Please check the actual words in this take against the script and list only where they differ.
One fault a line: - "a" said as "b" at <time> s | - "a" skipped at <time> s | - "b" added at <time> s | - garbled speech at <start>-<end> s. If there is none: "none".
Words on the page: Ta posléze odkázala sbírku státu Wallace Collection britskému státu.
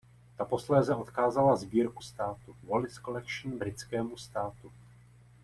none